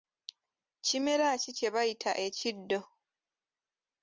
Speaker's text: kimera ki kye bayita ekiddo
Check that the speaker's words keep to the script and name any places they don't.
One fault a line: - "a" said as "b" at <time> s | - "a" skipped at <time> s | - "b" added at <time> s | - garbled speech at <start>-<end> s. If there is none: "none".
none